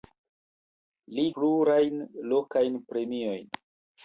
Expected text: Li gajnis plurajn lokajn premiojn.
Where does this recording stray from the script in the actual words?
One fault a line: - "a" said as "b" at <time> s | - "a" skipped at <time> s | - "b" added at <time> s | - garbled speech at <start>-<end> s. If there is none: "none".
- "gajnis" skipped at 1.2 s